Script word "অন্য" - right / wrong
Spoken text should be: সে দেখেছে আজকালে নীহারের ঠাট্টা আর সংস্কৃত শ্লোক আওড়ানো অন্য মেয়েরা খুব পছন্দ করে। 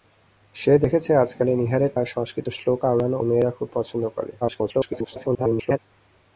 wrong